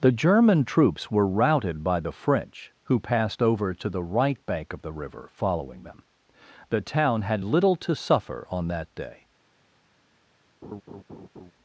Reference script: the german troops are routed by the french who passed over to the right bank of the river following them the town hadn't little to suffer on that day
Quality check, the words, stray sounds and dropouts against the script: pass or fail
fail